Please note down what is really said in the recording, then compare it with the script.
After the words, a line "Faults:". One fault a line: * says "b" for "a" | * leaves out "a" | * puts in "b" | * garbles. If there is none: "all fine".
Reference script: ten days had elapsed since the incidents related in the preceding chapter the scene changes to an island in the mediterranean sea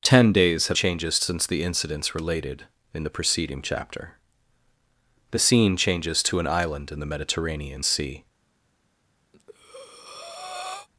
ten days had changes since the incidents related in the preceding chapter the scene changes to an island in the mediterranean sea
Faults:
* says "changes" for "elapsed"